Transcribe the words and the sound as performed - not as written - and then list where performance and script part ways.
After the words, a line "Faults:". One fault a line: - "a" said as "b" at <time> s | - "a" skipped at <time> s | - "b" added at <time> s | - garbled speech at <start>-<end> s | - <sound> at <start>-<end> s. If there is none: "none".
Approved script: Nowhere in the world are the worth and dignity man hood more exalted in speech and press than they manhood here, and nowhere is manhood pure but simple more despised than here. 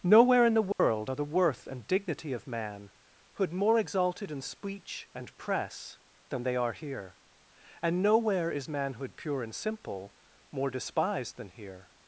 Nowhere in the world are the worth and dignity of man hood more exalted in speech and press than they are here, and nowhere is manhood pure and simple more despised than here.
Faults:
- dropout at 0.7-0.8 s
- "of" added at 2.3 s
- "manhood" said as "are" at 6.5 s
- "but" said as "and" at 9.4 s